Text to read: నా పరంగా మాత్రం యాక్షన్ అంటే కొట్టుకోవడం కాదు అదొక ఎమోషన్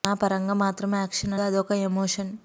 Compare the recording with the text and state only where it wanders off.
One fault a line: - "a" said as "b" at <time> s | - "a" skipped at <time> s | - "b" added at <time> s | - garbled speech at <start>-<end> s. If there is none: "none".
- "అంటే కొట్టుకోవడం కాదు" skipped at 1.3 s